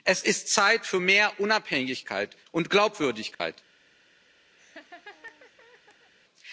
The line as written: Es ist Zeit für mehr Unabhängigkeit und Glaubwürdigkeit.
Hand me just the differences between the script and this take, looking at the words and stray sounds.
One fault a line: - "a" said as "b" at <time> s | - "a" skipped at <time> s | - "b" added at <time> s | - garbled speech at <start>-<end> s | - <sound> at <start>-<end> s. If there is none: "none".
- dropout at 3.3-3.4 s
- laugh at 4.6-6.1 s